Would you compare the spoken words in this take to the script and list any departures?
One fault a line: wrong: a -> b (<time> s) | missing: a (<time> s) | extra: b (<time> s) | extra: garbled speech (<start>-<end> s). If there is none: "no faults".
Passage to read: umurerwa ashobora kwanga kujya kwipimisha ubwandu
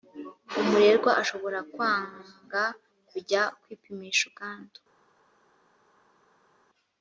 no faults